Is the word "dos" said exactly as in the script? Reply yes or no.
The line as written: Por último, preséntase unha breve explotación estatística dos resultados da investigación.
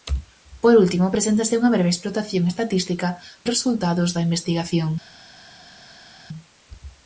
no